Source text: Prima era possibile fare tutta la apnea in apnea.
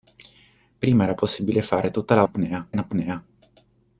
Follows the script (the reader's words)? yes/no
yes